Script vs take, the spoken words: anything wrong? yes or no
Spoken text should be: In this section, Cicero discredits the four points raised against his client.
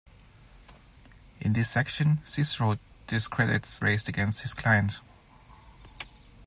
yes